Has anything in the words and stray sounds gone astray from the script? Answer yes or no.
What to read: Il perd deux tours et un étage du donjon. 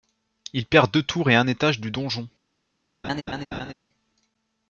yes